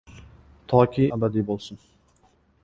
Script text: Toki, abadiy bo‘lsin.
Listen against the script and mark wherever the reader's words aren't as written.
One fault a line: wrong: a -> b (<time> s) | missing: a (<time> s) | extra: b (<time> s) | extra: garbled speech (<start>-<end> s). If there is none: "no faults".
no faults